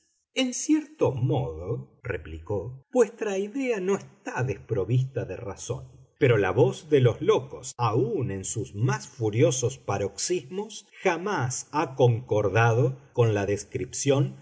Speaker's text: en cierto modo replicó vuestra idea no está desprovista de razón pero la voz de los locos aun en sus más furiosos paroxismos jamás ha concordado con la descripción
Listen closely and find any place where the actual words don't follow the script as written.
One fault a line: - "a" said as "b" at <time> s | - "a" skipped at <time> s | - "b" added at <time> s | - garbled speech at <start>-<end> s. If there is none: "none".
none